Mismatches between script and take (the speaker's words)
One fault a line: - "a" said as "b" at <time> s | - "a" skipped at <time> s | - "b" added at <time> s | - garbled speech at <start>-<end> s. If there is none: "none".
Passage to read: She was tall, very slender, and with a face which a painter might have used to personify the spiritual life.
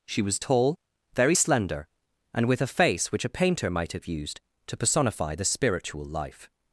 none